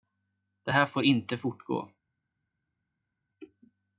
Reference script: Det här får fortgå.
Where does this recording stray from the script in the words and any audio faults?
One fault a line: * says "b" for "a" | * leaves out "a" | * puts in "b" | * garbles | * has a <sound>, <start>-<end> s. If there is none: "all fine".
* puts in "inte"